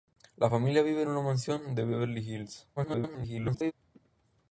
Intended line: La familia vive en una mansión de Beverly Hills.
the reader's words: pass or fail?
fail